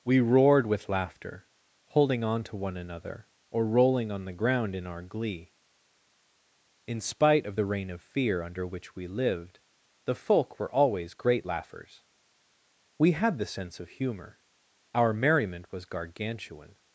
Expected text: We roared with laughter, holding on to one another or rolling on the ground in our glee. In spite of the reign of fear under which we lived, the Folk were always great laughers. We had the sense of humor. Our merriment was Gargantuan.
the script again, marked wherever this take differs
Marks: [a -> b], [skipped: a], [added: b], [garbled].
We roared with laughter, holding on to one another or rolling on the ground in our glee. In spite of the reign of fear under which we lived, the Folk were always great laughers. We had the sense of humor. Our merriment was Gargantuan.